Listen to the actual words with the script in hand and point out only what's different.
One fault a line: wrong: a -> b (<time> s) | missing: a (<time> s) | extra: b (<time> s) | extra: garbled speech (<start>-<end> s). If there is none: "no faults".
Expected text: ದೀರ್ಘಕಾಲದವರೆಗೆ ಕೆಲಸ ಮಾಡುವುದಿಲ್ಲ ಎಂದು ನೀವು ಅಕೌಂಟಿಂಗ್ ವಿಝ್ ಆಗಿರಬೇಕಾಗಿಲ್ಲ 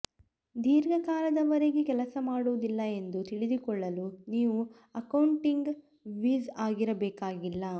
extra: ತಿಳಿದುಕೊಳ್ಳಲು (3.2 s)